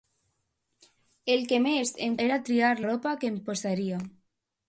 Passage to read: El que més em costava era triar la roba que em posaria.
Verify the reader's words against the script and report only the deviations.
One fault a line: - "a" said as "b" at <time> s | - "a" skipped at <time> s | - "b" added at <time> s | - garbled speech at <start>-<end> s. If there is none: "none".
- "costava" skipped at 2.1 s
- "la" skipped at 2.7 s